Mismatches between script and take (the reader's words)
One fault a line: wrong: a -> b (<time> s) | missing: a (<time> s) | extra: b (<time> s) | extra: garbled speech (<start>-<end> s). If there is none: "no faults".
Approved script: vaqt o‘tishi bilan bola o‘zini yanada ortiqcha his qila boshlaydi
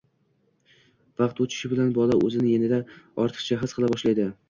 no faults